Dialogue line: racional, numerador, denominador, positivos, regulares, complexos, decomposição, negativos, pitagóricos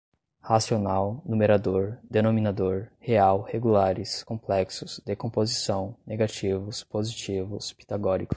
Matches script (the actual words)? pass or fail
fail